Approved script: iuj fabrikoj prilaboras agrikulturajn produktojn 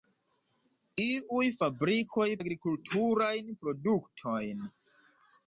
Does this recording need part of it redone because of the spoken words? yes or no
yes